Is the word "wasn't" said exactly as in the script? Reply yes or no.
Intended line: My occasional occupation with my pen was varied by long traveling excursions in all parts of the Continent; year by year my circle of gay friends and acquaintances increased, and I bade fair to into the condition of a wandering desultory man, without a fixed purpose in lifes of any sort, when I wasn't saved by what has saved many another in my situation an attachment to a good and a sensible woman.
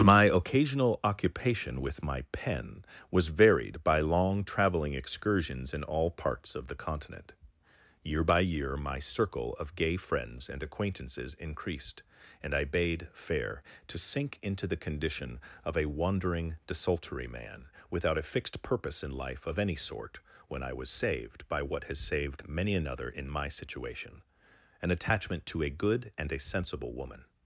no